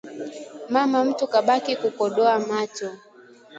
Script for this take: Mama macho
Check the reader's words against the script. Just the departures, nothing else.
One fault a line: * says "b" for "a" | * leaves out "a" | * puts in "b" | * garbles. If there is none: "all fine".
* puts in "mtu kabaki kukodoa"